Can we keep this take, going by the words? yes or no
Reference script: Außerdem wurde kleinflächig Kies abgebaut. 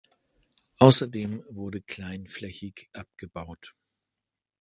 no